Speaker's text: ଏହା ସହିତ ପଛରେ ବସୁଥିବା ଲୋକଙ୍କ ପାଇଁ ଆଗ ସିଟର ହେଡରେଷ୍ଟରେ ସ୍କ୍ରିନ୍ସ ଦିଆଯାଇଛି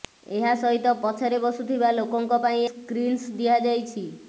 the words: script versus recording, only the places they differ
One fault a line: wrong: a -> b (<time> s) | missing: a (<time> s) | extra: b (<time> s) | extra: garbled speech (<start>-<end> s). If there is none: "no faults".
missing: ଆଗ ସିଟର ହେଡରେଷ୍ଟରେ (2.6 s)